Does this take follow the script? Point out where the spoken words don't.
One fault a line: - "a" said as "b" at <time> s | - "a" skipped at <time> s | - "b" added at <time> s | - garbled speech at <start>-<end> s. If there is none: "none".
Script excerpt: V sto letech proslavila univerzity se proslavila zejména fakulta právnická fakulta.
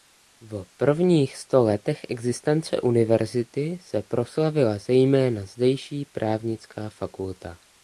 - "prvních" added at 0.8 s
- "proslavila" said as "existence" at 2.1 s
- "fakulta" said as "zdejší" at 5.5 s